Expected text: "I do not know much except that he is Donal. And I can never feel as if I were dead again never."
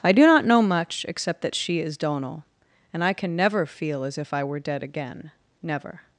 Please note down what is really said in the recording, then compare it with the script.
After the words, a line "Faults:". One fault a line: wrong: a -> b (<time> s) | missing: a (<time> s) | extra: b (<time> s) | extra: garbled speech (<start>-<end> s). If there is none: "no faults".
"I do not know much except that she is Donal. And I can never feel as if I were dead again never."
Faults:
wrong: he -> she (1.6 s)